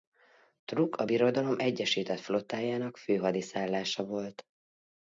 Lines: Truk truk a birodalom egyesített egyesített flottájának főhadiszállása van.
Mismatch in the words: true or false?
true